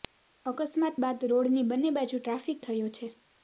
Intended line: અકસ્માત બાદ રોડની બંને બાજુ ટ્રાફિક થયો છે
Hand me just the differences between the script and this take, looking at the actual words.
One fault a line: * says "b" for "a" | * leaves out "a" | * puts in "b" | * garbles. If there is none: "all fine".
all fine